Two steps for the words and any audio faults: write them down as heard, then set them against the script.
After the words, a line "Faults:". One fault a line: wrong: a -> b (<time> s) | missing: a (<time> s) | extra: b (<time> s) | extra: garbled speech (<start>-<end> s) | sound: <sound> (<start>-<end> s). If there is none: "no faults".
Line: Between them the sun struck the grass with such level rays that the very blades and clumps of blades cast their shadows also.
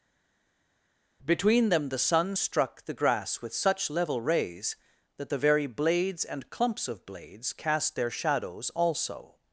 Between them the sun struck the grass with such level rays that the very blades and clumps of blades cast their shadows also.
Faults:
no faults